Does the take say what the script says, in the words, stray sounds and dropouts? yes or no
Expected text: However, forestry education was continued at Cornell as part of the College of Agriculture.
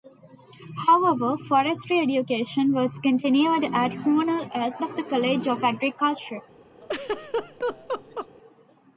no